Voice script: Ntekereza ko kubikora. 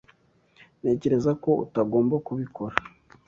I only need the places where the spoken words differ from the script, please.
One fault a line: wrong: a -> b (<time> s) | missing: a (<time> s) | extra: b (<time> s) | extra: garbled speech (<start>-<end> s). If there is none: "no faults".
extra: utagomba (1.6 s)